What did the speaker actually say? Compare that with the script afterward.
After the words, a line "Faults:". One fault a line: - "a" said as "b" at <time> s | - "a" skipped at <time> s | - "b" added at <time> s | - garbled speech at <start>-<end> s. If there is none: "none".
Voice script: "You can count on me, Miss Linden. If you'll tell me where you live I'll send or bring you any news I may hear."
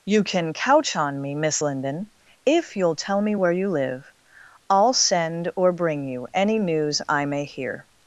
"You can couch on me, Miss Linden. If you'll tell me where you live I'll send or bring you any news I may hear."
Faults:
- "count" said as "couch" at 0.5 s